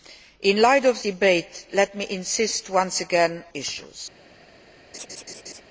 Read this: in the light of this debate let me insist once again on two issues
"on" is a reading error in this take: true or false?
true